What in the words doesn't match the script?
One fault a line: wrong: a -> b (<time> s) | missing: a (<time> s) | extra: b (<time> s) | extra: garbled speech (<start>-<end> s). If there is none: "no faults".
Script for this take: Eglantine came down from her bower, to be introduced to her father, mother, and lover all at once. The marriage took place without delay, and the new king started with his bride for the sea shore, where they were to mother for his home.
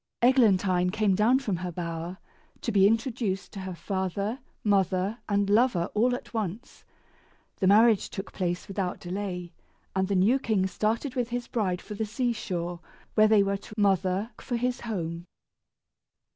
no faults